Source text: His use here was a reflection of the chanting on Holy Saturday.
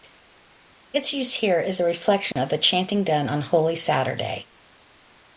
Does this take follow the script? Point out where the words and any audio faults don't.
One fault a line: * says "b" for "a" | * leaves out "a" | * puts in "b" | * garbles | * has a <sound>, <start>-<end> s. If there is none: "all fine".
* says "Its" for "His"
* says "is" for "was"
* has a dropout, 2.3-2.4 s
* puts in "done"